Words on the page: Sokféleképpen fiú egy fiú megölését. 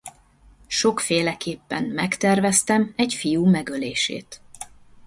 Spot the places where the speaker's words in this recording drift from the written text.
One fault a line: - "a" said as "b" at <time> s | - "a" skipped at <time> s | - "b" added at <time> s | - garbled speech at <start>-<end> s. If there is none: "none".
- "fiú" said as "megterveztem" at 1.8 s